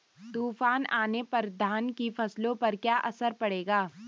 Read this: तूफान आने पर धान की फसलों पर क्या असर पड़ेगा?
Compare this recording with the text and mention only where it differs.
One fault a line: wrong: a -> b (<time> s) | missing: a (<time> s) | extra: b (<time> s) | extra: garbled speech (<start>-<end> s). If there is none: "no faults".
no faults